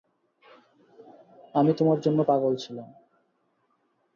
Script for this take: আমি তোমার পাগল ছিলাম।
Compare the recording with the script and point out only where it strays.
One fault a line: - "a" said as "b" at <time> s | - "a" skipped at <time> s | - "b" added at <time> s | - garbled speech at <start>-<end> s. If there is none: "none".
- "জন্য" added at 2.0 s